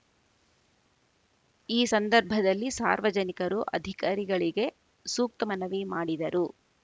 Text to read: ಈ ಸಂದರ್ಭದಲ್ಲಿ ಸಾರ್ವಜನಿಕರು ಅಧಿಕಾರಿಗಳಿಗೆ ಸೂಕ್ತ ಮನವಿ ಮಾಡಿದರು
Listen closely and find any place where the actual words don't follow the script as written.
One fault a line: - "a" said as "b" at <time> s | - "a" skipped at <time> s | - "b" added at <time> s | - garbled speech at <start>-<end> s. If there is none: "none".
none